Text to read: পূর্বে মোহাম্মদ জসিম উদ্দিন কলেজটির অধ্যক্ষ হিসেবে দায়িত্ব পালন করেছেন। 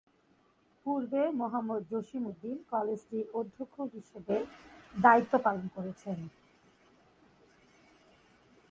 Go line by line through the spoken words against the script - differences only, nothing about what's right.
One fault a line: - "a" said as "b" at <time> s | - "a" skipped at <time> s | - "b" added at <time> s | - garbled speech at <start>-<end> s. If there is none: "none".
none